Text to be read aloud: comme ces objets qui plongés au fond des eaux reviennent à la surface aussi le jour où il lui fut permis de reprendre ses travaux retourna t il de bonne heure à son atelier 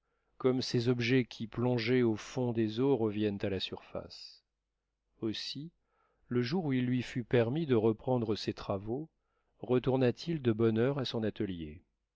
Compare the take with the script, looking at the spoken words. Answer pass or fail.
pass